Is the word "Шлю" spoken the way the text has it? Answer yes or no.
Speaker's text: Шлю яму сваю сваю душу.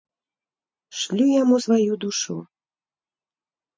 yes